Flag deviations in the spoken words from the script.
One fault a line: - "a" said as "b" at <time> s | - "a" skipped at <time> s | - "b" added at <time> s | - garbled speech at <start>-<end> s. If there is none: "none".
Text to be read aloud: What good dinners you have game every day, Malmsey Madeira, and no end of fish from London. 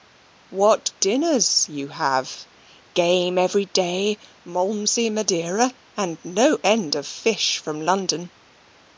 - "good" skipped at 0.9 s